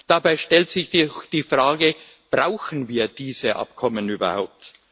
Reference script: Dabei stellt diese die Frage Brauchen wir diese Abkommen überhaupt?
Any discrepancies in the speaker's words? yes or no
yes